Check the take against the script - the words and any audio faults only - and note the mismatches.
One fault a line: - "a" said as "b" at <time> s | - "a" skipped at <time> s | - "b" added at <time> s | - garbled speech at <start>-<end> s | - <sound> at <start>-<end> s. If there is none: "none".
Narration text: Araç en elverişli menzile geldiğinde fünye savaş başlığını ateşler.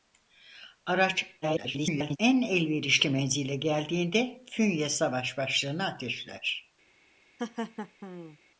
- garbled speech at 1.4-2.2 s
- laugh at 7.4-8.4 s